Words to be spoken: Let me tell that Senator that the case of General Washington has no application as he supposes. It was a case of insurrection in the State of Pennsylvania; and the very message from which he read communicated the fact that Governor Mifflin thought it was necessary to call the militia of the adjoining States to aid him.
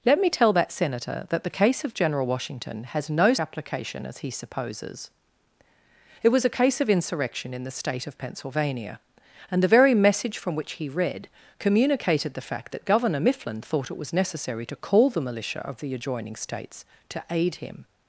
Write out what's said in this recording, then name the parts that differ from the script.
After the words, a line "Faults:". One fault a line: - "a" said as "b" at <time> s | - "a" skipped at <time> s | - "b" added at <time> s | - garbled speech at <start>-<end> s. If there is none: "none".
Let me tell that Senator that the case of General Washington has no application as he supposes. It was a case of insurrection in the State of Pennsylvania; and the very message from which he read communicated the fact that Governor Mifflin thought it was necessary to call the militia of the adjoining States to aid him.
Faults:
none